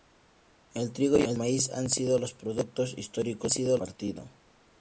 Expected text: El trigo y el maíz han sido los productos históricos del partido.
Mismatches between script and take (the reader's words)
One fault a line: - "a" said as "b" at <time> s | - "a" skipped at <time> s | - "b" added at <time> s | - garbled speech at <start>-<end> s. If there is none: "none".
- "del" said as "sido" at 3.5 s